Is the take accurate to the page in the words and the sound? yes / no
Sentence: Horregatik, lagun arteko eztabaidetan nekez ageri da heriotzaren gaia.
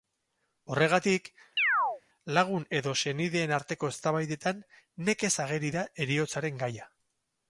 no